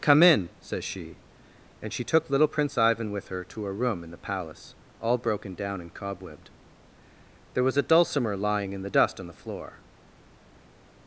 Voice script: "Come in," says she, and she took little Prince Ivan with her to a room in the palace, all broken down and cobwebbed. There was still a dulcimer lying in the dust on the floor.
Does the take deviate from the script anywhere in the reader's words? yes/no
yes